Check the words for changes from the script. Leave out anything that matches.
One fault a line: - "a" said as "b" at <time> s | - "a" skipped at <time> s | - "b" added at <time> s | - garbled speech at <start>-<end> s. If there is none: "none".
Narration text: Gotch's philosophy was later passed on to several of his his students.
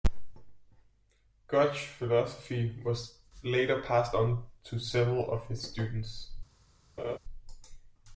- "his" skipped at 5.6 s